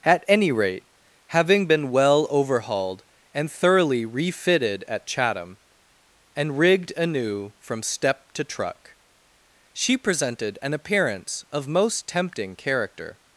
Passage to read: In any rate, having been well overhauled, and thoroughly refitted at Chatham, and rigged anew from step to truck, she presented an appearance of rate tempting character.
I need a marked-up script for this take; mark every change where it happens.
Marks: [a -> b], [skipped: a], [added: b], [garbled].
[In -> At] any rate, having been well overhauled, and thoroughly refitted at Chatham, and rigged anew from step to truck, she presented an appearance of [rate -> most] tempting character.